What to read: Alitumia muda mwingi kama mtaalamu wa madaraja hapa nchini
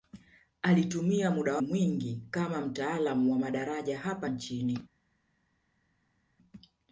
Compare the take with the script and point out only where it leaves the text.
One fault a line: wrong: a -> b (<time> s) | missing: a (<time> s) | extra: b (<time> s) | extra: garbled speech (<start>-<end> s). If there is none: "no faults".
no faults